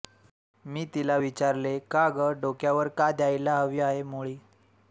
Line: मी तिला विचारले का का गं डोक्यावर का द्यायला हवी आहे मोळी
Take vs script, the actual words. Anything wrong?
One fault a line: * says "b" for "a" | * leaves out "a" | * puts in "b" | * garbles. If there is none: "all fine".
* leaves out "का"